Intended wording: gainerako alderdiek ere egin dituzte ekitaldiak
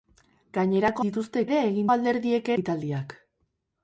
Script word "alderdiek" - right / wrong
wrong